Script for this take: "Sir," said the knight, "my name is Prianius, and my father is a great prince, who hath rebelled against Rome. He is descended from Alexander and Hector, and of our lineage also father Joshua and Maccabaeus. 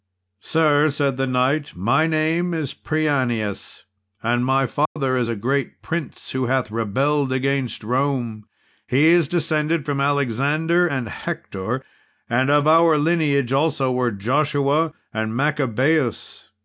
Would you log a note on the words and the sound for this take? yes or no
yes